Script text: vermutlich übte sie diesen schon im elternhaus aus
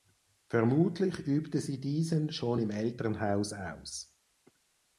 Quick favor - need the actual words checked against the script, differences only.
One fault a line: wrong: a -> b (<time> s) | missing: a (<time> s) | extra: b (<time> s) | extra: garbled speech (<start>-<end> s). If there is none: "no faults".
no faults